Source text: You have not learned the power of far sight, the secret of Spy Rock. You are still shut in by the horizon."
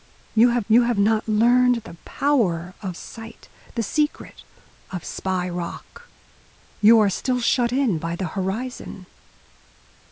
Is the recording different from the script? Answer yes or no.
yes